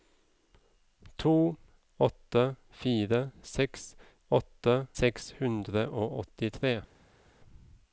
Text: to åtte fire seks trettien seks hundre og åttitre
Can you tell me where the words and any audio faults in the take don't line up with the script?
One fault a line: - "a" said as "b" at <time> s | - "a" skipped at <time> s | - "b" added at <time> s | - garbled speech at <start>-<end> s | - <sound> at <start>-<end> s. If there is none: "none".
- "trettien" said as "åtte" at 4.3 s